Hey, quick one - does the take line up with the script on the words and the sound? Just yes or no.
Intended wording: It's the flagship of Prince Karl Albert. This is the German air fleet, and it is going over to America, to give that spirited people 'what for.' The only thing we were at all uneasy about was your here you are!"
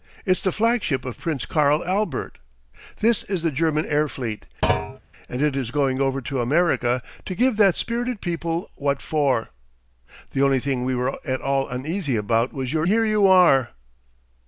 no